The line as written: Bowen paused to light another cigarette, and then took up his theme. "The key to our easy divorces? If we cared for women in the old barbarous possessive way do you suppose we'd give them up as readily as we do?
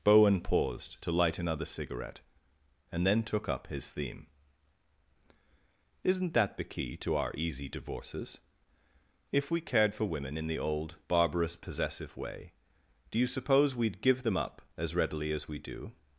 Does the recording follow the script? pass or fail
fail